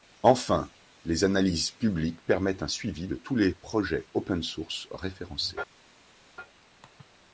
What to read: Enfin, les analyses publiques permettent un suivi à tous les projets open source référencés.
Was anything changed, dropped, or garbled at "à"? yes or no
yes